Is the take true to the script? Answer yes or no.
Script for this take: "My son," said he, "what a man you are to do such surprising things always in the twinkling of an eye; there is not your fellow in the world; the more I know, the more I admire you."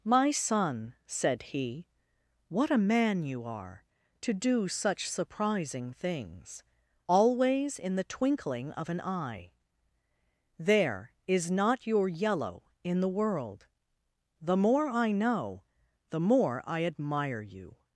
no